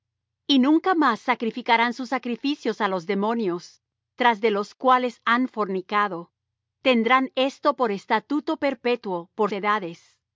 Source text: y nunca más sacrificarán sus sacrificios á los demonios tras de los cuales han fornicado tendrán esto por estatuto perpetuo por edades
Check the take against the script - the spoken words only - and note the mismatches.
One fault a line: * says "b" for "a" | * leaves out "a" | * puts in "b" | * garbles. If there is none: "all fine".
all fine